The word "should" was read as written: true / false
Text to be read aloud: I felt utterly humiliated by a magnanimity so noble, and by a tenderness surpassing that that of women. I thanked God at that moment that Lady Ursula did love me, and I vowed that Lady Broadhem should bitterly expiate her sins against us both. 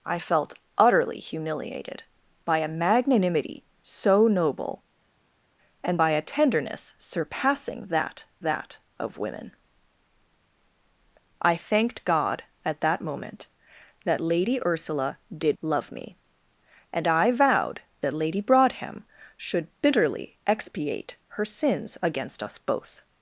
true